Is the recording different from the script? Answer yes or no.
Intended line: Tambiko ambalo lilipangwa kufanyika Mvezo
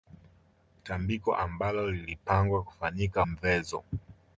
no